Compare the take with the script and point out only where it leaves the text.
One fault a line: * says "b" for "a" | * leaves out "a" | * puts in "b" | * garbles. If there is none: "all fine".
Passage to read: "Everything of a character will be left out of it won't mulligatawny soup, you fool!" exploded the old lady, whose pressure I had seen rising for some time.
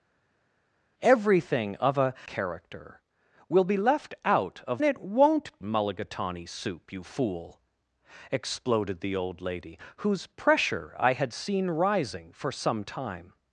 all fine